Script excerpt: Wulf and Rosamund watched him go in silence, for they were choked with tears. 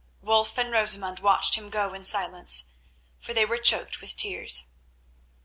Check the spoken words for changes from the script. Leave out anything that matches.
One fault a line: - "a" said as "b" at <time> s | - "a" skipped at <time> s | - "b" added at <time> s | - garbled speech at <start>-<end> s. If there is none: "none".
none